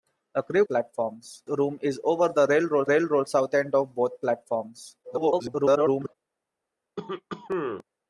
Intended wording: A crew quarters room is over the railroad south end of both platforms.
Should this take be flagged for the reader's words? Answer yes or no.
yes